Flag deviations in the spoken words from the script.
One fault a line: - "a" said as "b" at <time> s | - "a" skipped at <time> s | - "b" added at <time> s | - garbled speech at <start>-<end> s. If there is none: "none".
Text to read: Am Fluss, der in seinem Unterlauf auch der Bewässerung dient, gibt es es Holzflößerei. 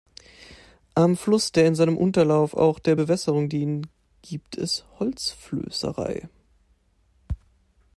- "es" skipped at 4.8 s